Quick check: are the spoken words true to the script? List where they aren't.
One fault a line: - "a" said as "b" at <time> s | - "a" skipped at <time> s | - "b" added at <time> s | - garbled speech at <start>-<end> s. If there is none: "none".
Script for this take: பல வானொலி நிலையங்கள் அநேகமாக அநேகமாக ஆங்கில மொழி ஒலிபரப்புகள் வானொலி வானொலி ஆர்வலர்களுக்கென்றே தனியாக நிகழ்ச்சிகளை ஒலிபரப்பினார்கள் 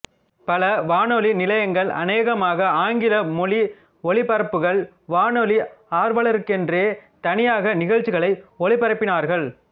- "அநேகமாக" skipped at 2.7 s
- "வானொலி" skipped at 5.6 s